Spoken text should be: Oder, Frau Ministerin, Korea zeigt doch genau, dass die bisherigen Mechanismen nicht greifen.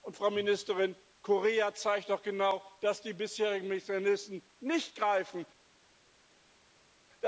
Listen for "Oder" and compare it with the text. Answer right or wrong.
wrong